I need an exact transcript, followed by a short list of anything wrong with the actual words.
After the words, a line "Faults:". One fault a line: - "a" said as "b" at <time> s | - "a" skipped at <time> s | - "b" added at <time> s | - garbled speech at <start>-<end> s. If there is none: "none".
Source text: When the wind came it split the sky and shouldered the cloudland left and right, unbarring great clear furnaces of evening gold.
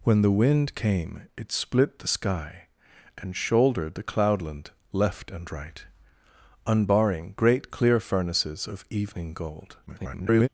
When the wind came it split the sky and shouldered the cloudland left and right, unbarring great clear furnaces of evening gold. [garbled]
Faults:
- garbled speech at 9.9-10.5 s